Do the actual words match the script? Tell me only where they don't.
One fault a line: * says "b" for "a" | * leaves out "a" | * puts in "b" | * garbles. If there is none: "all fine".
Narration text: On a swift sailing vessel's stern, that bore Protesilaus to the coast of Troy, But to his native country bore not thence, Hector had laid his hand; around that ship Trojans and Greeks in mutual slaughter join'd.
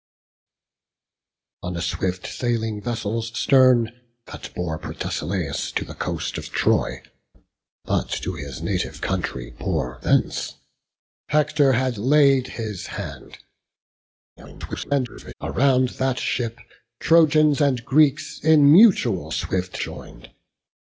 * leaves out "not"
* garbles
* says "swift" for "slaughter"